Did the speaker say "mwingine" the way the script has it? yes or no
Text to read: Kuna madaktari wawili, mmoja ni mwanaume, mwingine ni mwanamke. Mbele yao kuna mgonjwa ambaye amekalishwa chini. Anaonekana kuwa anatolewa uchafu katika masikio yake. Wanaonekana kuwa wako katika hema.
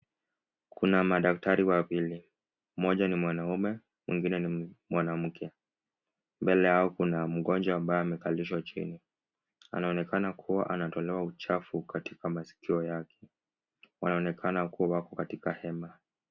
yes